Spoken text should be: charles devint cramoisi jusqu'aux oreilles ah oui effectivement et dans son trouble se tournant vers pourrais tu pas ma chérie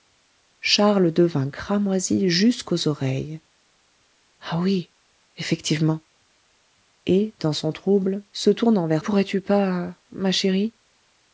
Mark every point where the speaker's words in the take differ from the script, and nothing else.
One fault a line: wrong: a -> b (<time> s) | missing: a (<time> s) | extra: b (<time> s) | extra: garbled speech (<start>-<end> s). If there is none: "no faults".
no faults